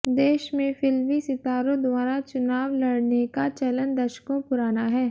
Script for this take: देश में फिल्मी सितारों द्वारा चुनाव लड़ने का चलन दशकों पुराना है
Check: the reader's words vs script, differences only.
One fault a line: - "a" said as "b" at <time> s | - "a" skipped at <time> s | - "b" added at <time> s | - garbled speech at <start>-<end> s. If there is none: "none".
none